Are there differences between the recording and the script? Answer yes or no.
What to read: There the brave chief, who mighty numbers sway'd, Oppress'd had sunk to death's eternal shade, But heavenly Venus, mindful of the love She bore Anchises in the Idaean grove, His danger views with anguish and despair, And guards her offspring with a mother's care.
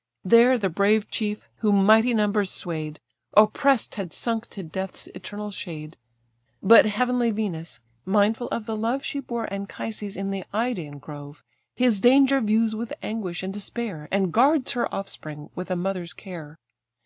no